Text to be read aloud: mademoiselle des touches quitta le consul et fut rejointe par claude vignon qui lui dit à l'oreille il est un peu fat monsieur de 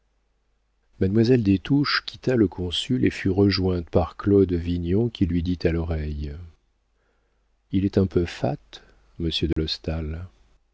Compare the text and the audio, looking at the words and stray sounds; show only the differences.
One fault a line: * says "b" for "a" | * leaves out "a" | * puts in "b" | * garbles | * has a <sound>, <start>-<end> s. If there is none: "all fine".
* has a dropout, 9.5-9.6 s